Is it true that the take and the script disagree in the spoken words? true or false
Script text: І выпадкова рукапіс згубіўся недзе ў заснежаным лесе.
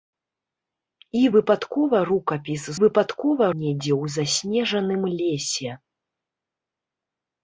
true